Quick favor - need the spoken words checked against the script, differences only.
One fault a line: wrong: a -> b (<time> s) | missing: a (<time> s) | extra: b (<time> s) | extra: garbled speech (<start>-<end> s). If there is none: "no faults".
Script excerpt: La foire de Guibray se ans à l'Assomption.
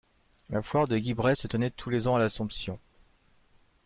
extra: tenait tous les (1.4 s)